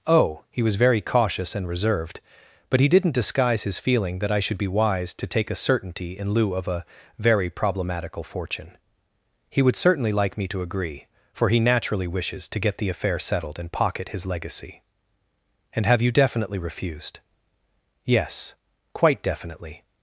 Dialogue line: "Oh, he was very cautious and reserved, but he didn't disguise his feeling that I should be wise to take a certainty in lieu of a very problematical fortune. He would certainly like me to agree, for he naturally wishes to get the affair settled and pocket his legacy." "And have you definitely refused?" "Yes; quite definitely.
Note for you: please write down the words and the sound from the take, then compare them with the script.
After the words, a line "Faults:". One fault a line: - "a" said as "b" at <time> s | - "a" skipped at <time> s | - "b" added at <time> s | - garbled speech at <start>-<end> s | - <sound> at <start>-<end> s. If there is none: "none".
"Oh, he was very cautious and reserved, but he didn't disguise his feeling that I should be wise to take a certainty in lieu of a very problematical fortune. He would certainly like me to agree, for he naturally wishes to get the affair settled and pocket his legacy." "And have you definitely refused?" "Yes; quite definitely.
Faults:
none